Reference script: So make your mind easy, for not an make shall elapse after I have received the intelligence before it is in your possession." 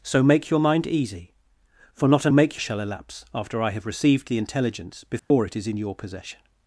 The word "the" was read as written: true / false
true